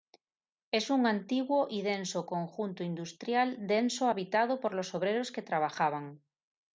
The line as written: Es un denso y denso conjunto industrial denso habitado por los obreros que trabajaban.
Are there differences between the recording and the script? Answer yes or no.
yes